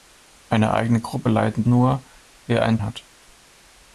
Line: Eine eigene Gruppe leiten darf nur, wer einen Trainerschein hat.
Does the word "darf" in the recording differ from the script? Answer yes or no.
yes